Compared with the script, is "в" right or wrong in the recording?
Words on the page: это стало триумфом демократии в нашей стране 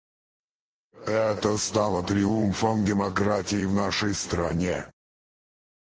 right